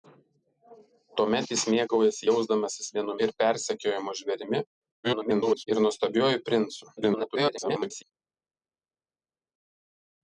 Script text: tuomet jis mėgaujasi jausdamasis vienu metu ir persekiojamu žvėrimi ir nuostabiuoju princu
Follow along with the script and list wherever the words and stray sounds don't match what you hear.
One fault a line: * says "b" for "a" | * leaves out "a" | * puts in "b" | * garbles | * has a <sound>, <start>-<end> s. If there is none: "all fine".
* leaves out "metu"
* garbles
* garbles